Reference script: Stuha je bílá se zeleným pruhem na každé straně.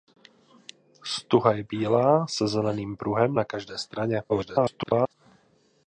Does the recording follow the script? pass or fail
fail